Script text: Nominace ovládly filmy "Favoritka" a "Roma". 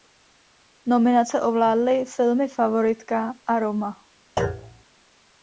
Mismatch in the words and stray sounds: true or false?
true